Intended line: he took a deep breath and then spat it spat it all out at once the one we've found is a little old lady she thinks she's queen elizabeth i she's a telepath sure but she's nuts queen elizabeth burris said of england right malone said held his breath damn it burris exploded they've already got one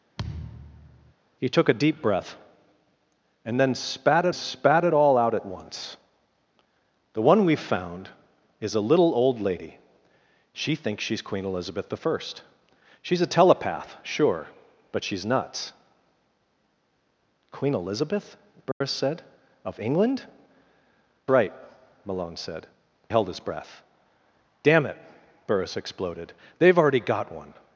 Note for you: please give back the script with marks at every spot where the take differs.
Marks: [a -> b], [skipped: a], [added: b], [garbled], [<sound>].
[thud] he took a deep breath and then spat it spat it all out at once the one we've found is a little old lady she thinks she's queen elizabeth i she's a telepath sure but she's nuts queen elizabeth burris [dropout] said of england right malone said held his breath damn it burris exploded they've already got one